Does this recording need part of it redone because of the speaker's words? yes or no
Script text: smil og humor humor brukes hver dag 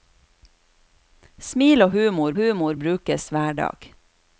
no